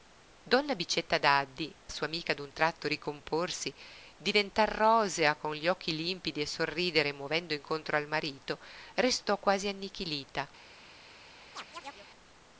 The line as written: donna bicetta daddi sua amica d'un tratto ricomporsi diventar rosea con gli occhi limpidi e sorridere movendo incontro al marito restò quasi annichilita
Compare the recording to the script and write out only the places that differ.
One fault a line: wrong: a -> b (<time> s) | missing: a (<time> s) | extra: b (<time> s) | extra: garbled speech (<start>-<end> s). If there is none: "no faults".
no faults